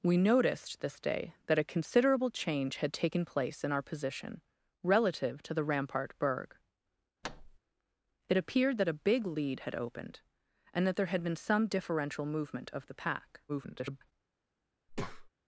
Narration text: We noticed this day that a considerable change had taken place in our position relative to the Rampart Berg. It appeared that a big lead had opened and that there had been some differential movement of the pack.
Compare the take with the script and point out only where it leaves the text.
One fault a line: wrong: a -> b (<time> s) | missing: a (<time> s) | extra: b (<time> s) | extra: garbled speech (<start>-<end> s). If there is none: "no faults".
extra: garbled speech (13.5-14.1 s)